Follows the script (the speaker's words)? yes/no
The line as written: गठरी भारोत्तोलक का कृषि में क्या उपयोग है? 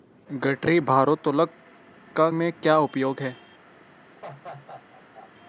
no